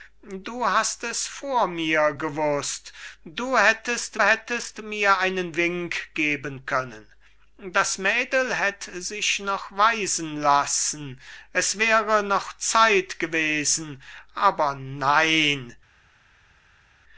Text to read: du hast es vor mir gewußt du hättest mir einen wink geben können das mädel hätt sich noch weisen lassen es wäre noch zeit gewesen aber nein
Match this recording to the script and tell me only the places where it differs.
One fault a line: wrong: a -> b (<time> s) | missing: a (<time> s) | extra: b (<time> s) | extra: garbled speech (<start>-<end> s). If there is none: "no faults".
extra: hättest (4.2 s)